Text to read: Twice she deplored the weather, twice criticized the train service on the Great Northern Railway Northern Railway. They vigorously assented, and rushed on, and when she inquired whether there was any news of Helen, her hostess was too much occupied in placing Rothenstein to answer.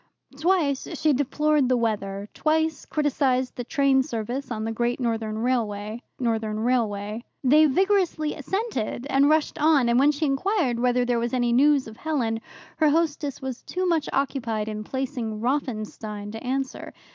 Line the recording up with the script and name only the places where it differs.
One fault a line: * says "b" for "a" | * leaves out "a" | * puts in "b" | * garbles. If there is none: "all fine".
all fine